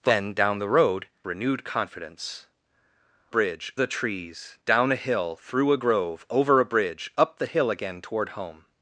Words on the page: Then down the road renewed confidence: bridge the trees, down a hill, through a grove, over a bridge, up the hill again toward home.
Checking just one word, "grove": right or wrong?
right